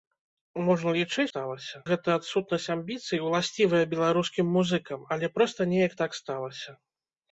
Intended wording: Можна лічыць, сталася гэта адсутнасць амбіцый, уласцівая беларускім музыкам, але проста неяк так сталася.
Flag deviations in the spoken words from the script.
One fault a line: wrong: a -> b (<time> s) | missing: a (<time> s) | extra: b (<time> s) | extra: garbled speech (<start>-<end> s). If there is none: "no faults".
no faults